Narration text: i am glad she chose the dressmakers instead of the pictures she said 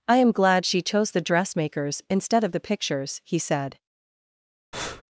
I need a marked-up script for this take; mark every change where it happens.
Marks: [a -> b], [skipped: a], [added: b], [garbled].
i am glad she chose the dressmakers instead of the pictures [she -> he] said